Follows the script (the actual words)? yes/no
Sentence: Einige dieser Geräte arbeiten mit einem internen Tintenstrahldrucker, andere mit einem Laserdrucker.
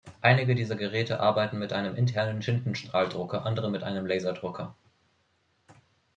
yes